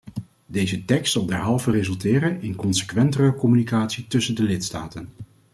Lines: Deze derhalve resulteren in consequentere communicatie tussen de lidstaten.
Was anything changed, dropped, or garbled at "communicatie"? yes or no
no